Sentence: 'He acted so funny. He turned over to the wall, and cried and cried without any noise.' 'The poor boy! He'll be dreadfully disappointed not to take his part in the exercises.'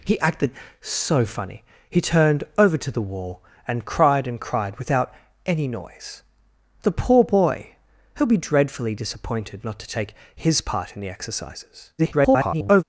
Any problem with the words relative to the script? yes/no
yes